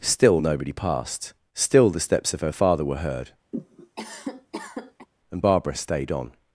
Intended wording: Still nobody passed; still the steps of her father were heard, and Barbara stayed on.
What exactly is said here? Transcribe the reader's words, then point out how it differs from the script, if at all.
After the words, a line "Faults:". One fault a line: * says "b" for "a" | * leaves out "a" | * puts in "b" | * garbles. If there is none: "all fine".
Still nobody passed; still the steps of her father were heard, and Barbara stayed on.
Faults:
all fine